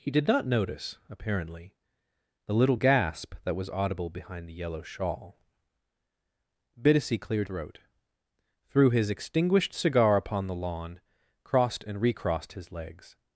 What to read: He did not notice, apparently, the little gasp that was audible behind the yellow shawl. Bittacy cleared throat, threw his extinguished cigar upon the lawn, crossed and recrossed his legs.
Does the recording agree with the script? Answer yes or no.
yes